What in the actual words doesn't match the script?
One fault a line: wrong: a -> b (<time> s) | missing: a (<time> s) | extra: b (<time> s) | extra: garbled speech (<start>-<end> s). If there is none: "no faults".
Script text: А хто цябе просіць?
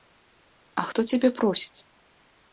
no faults